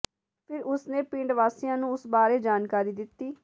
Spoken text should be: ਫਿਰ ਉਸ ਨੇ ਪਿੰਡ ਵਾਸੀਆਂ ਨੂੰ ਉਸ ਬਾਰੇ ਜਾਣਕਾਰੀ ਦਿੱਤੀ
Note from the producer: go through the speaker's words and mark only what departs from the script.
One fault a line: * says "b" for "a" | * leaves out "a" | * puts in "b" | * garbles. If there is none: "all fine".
all fine